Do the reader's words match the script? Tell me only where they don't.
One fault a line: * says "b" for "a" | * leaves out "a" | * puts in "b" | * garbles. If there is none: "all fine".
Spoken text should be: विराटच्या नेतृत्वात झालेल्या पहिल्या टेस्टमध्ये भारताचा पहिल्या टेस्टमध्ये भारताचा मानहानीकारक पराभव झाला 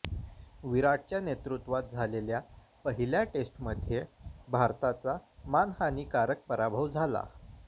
* leaves out "पहिल्या टेस्टमध्ये भारताचा"